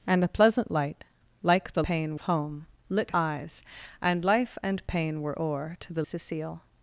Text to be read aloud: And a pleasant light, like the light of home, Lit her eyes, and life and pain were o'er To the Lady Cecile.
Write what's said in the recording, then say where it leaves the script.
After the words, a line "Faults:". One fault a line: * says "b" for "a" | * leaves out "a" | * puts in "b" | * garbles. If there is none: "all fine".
And a pleasant light, like the pain of home, Lit eyes, and life and pain were o'er To the Cecile.
Faults:
* says "pain" for "light"
* leaves out "her"
* leaves out "Lady"